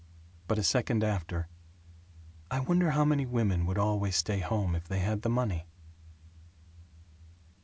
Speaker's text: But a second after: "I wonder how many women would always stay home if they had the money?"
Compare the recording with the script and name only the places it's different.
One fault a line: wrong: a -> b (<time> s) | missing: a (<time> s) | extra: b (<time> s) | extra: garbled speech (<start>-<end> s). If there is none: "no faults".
no faults